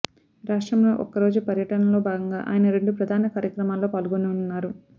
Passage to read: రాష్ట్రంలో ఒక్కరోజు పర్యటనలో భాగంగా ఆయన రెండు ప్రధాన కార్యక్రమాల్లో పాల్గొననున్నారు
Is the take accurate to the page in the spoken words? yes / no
yes